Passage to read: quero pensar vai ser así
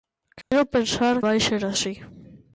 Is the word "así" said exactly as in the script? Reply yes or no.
yes